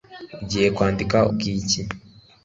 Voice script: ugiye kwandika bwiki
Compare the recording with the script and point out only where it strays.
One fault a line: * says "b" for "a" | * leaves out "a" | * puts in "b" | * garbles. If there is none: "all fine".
all fine